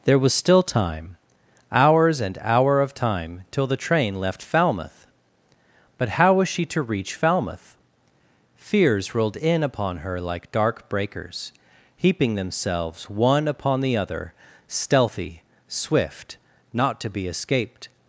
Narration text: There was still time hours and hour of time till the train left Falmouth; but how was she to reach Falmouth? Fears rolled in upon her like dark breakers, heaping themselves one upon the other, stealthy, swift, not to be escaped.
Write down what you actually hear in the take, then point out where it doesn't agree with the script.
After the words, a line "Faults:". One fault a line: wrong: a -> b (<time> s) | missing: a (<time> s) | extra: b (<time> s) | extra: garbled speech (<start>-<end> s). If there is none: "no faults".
There was still time hours and hour of time till the train left Falmouth; but how was she to reach Falmouth? Fears rolled in upon her like dark breakers, heaping themselves one upon the other, stealthy, swift, not to be escaped.
Faults:
no faults